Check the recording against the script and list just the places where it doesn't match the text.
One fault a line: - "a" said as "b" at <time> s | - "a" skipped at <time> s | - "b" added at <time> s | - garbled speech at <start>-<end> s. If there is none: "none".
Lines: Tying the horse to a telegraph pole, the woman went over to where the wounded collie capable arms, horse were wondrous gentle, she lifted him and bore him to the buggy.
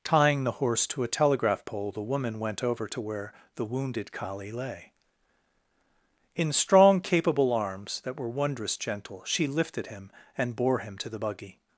- "lay In strong" added at 4.5 s
- "horse" said as "that" at 8.0 s